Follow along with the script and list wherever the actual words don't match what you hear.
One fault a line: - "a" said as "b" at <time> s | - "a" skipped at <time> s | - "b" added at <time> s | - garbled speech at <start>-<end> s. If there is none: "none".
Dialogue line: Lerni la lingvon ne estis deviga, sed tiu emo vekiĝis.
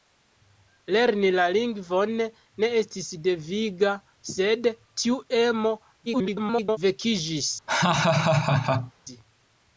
- garbled speech at 6.1-6.8 s